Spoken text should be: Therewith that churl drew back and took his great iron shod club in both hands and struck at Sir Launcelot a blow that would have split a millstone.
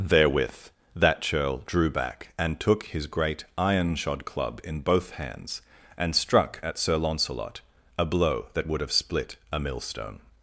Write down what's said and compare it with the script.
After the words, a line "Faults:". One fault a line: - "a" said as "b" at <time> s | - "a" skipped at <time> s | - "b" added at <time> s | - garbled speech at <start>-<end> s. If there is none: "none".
Therewith that churl drew back and took his great iron shod club in both hands and struck at Sir Launcelot a blow that would have split a millstone.
Faults:
none